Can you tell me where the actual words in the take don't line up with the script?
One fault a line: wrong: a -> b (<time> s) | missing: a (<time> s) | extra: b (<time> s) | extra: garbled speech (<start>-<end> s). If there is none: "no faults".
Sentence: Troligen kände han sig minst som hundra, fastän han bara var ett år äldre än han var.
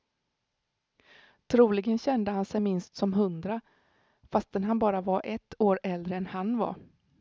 no faults